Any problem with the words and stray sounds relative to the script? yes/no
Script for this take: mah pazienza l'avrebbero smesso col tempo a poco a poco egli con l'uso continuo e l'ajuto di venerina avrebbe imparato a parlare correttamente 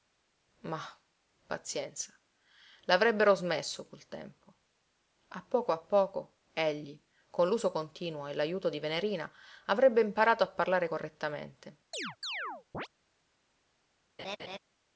yes